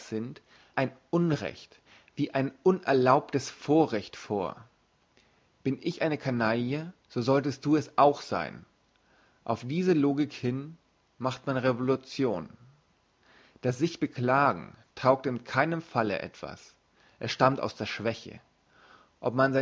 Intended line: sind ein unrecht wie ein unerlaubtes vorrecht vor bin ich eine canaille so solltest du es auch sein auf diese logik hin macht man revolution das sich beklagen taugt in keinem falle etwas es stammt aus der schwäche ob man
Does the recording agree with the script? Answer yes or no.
yes